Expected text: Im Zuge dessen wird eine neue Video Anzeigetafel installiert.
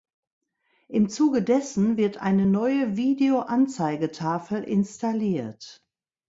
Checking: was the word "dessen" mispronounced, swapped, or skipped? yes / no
no